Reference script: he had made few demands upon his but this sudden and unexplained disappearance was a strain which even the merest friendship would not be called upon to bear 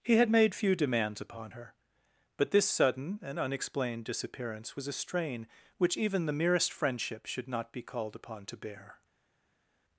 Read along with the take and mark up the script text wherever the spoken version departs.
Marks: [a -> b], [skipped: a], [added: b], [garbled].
he had made few demands upon [his -> her] but this sudden and unexplained disappearance was a strain which even the merest friendship [would -> should] not be called upon to bear